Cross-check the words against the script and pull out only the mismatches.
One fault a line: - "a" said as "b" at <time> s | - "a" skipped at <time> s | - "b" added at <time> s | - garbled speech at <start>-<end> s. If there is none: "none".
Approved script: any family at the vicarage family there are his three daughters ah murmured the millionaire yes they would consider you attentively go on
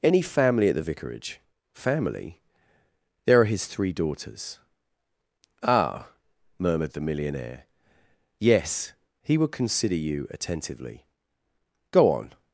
- "they" said as "he" at 9.2 s